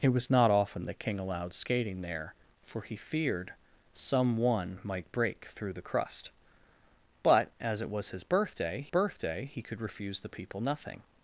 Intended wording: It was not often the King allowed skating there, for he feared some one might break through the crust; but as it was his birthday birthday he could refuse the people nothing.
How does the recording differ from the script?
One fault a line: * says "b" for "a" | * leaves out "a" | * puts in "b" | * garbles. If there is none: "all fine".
all fine